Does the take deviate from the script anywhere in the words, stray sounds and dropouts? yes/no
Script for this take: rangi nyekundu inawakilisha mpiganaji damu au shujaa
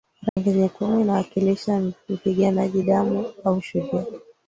yes